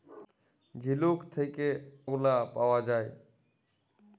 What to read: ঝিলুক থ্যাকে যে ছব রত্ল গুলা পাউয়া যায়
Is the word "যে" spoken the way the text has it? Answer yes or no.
no